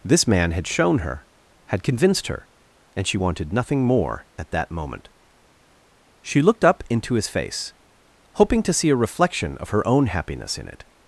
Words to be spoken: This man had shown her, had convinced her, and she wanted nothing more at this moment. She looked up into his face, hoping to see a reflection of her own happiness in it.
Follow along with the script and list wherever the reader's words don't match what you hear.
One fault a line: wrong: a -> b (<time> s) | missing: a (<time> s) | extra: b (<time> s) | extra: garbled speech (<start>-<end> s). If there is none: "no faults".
wrong: this -> that (4.5 s)